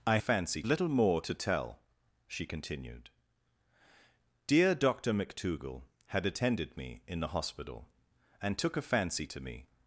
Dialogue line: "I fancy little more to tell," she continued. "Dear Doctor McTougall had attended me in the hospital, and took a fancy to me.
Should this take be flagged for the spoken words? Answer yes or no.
no